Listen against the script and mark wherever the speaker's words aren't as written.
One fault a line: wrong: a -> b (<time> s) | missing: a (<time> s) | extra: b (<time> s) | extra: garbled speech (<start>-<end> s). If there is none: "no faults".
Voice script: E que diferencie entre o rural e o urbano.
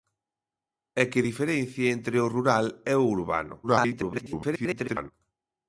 extra: garbled speech (3.6-5.1 s)